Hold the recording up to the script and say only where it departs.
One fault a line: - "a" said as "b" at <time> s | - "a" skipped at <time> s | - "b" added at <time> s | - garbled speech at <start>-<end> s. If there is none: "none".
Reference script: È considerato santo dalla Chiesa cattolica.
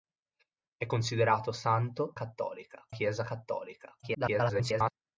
- "dalla" said as "cattolica" at 2.1 s
- garbled speech at 4.0-4.9 s